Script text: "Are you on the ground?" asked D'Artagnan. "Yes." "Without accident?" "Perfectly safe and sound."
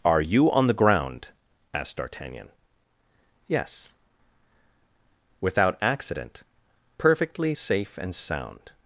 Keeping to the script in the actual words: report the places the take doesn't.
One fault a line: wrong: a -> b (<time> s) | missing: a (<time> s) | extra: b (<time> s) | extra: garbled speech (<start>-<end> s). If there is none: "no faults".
no faults